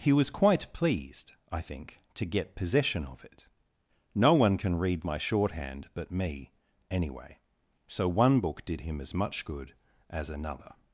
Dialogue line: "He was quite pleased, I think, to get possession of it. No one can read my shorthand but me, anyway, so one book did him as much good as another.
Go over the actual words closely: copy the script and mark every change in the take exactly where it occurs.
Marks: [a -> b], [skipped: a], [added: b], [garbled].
"He was quite pleased, I think, to get possession of it. No one can read my shorthand but me, anyway, so one book did him as much good as another.